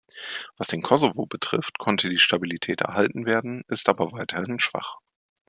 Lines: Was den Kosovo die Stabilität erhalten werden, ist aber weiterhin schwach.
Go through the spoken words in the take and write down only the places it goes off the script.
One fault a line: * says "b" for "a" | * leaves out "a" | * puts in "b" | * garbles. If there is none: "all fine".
* puts in "betrifft konnte"